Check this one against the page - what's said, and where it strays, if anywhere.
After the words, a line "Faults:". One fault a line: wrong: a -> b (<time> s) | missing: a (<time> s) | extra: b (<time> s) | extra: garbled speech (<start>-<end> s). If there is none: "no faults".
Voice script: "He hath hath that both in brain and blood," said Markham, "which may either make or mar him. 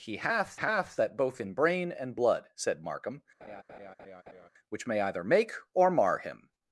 "He hath hath that both in brain and blood," said Markham, "which may either make or mar him.
Faults:
no faults